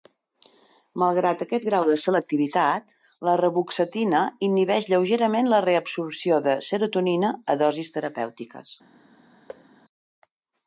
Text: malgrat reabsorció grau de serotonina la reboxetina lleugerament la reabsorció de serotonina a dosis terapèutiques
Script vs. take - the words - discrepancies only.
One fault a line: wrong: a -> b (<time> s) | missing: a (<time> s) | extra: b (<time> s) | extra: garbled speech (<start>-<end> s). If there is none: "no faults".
wrong: reabsorció -> aquest (1.4 s)
wrong: serotonina -> selectivitat (2.0 s)
extra: inhibeix (4.5 s)